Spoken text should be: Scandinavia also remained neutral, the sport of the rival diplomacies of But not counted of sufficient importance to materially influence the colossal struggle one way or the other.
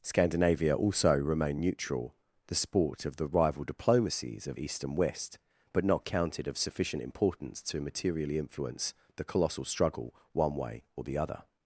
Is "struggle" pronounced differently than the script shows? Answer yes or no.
no